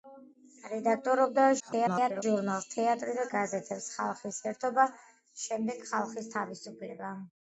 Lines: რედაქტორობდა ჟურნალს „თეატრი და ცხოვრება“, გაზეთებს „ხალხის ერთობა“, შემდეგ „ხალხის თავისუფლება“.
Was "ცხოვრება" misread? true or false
true